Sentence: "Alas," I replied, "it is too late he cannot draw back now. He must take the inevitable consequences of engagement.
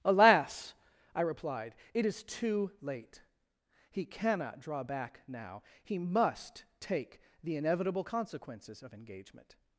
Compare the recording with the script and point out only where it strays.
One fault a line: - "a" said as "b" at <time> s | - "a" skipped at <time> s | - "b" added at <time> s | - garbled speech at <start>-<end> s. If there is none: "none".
none